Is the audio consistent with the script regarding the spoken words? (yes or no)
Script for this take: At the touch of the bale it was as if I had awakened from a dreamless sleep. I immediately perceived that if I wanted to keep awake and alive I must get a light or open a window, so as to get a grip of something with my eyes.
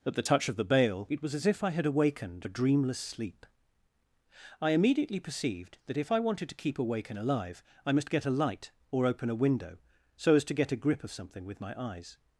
no